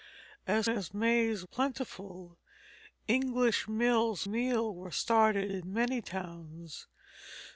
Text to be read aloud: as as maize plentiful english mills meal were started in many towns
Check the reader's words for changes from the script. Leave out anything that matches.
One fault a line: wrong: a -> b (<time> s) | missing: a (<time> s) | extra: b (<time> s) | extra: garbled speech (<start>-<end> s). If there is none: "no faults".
no faults